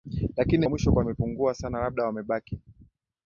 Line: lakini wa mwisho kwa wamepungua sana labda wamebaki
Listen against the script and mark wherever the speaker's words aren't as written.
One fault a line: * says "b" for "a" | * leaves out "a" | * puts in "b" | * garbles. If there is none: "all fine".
all fine